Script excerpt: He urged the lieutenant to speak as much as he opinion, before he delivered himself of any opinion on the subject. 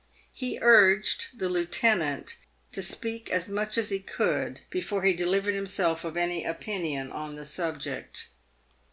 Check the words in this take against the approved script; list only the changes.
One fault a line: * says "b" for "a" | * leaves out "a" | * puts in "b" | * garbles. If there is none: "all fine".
* says "could" for "opinion"